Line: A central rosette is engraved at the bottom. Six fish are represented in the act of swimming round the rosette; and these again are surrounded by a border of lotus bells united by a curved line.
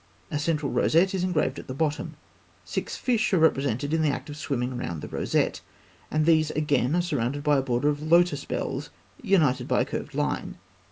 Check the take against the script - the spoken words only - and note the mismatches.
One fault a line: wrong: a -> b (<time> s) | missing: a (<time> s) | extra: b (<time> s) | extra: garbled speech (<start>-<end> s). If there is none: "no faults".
no faults